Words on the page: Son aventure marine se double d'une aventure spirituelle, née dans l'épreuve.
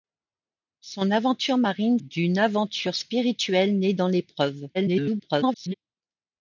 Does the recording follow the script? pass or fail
fail